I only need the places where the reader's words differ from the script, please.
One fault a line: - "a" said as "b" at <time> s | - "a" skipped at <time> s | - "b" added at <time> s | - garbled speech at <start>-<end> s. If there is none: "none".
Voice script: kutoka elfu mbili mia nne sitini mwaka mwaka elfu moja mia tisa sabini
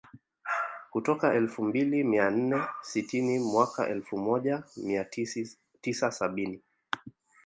- "mwaka" skipped at 3.9 s